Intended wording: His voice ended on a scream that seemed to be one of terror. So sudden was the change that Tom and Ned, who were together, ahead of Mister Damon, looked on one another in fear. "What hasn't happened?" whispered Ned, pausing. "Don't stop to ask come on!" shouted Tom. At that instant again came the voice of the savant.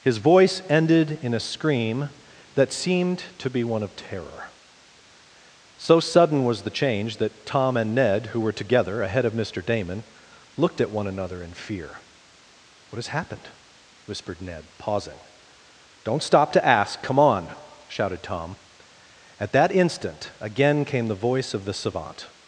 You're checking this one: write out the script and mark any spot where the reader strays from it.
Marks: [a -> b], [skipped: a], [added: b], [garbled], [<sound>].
His voice ended [on -> in] a scream that seemed to be one of terror. So sudden was the change that Tom and Ned, who were together, ahead of Mister Damon, looked [on -> at] one another in fear. "What [hasn't -> has] happened?" whispered Ned, pausing. "Don't stop to ask come on!" shouted Tom. At that instant again came the voice of the savant.